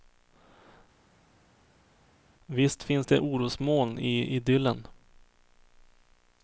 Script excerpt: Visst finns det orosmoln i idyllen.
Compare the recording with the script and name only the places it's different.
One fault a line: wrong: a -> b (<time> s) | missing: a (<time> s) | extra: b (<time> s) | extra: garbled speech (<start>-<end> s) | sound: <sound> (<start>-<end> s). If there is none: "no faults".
no faults